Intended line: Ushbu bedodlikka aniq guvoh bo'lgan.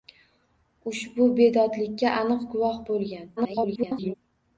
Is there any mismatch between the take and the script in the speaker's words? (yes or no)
yes